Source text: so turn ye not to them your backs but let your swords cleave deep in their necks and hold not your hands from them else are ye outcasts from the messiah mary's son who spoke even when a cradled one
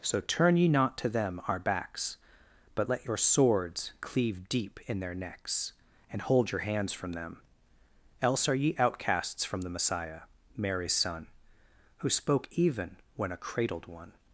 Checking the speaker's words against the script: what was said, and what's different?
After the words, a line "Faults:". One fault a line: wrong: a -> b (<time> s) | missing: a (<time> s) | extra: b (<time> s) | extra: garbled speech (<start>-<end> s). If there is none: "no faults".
so turn ye not to them our backs but let your swords cleave deep in their necks and hold your hands from them else are ye outcasts from the messiah mary's son who spoke even when a cradled one
Faults:
wrong: your -> our (1.5 s)
missing: not (6.5 s)